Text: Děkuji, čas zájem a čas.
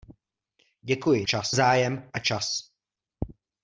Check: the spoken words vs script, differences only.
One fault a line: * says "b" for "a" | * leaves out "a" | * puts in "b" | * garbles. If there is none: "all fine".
all fine